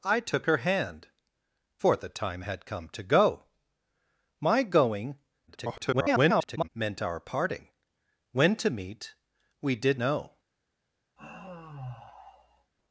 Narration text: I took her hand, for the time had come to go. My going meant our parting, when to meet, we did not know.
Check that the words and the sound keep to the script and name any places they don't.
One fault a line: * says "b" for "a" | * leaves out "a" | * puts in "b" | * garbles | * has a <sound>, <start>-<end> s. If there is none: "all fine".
* garbles
* leaves out "not"
* has a sigh, 11.2-12.7 s